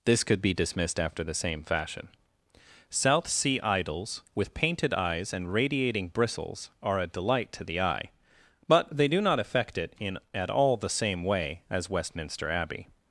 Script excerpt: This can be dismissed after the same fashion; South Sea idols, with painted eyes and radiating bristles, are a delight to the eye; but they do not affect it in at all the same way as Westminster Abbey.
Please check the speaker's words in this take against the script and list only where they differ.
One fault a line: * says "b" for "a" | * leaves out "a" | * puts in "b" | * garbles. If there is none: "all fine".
* says "could" for "can"